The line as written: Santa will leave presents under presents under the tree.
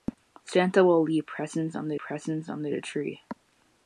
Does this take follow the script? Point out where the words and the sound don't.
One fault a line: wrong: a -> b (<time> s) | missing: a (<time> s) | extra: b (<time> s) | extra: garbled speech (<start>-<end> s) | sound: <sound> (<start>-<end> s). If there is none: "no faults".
no faults